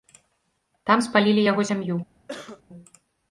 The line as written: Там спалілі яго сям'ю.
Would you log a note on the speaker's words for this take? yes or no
no